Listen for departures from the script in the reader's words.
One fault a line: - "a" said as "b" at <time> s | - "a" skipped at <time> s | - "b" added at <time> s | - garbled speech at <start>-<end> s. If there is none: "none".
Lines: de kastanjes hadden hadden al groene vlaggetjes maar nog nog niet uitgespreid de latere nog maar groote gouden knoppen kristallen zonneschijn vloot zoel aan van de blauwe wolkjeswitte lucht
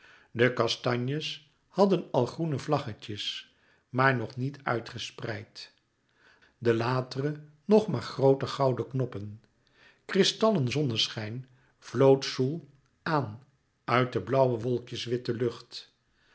- "hadden" skipped at 2.1 s
- "nog" skipped at 4.4 s
- "van" said as "uit" at 13.8 s